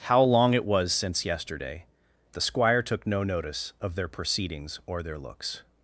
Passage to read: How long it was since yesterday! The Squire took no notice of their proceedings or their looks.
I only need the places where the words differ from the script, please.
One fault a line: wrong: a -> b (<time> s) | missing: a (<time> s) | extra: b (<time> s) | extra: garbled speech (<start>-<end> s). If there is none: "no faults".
no faults